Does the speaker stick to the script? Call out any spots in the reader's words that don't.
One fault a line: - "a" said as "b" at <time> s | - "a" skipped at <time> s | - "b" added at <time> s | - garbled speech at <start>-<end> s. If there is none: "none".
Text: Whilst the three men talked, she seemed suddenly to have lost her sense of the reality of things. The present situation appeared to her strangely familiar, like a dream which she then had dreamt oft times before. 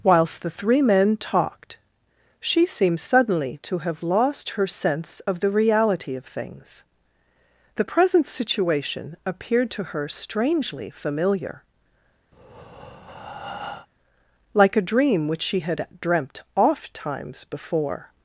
- "then" skipped at 15.6 s